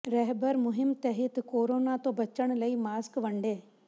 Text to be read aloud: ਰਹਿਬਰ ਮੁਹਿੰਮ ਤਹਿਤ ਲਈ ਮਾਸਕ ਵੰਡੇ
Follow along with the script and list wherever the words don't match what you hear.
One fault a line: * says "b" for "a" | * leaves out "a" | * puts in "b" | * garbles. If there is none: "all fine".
* puts in "ਕੋਰੋਨਾ ਤੋਂ ਬਚਣ"